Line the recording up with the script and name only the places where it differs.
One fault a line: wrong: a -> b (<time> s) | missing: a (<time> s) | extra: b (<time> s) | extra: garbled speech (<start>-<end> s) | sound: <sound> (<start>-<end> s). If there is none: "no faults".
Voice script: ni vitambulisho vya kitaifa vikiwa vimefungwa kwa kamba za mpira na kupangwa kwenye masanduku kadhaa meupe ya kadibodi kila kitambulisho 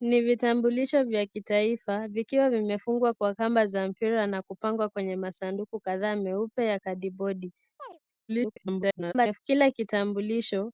sound: chirp (7.8-8.0 s)
extra: garbled speech (8.3-9.4 s)